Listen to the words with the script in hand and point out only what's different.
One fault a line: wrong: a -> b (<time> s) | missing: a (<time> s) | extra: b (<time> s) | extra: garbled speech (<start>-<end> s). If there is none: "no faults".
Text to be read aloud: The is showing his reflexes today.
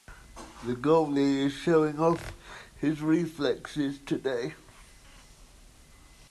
extra: goalie (0.8 s)
extra: off (2.0 s)